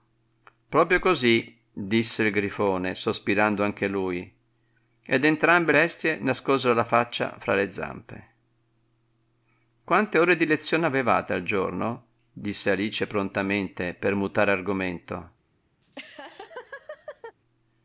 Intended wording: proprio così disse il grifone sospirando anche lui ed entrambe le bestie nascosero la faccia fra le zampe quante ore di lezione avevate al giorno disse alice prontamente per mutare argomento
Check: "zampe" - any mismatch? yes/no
no